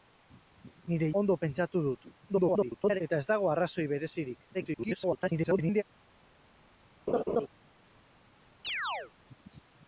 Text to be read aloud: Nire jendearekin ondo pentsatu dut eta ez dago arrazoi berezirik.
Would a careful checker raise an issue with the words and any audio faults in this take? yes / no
yes